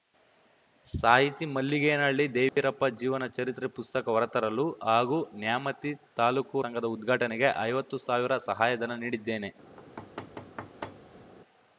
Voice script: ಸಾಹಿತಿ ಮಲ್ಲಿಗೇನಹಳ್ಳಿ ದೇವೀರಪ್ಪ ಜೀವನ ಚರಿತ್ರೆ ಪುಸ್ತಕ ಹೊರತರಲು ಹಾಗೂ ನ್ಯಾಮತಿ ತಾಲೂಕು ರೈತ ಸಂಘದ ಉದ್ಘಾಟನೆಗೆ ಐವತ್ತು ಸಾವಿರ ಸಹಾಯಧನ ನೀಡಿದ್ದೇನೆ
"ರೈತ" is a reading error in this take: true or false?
true